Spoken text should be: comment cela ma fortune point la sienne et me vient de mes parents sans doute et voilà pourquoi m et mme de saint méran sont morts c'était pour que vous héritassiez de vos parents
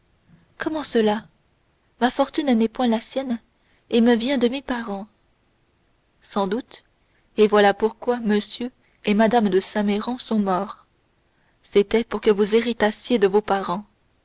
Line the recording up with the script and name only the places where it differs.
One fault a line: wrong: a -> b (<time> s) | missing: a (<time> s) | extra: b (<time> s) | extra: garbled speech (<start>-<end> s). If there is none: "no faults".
extra: n'est (2.5 s)